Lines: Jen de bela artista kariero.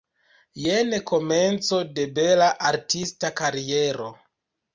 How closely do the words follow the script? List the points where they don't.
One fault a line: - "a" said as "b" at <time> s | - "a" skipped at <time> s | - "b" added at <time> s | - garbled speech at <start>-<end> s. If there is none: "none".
- "komenco" added at 1.1 s